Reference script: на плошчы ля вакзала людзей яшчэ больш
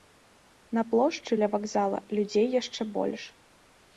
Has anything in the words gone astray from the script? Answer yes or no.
no